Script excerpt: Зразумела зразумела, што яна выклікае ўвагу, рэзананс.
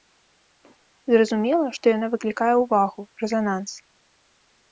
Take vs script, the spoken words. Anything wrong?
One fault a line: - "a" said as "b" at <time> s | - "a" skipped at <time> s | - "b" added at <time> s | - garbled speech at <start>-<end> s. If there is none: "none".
- "зразумела" skipped at 1.7 s